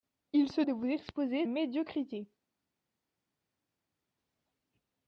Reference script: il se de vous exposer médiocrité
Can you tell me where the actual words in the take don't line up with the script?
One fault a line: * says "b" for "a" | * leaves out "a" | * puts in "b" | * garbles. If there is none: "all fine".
all fine